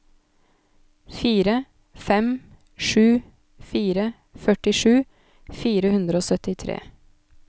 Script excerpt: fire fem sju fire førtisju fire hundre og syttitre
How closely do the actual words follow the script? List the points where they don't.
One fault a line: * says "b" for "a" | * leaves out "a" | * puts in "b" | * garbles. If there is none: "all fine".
all fine